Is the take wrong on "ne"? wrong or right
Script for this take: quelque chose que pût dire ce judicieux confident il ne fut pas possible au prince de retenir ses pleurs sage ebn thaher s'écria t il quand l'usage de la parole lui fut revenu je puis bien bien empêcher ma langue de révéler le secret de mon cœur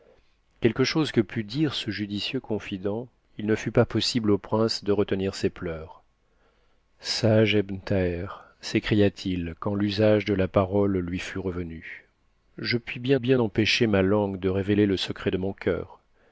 right